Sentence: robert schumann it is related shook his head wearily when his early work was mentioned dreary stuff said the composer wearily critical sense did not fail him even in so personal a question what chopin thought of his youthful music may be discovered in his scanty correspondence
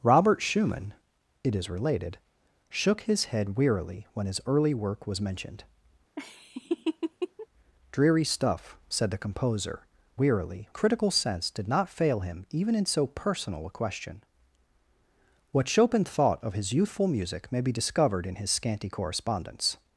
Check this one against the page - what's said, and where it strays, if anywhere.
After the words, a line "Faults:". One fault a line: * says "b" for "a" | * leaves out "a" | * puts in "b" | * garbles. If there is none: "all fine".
robert schumann it is related shook his head wearily when his early work was mentioned dreary stuff said the composer wearily critical sense did not fail him even in so personal a question what chopin thought of his youthful music may be discovered in his scanty correspondence
Faults:
all fine